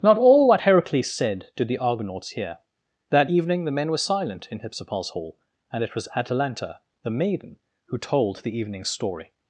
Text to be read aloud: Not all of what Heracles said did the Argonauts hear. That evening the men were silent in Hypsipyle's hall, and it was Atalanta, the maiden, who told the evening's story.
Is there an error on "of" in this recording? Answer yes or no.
yes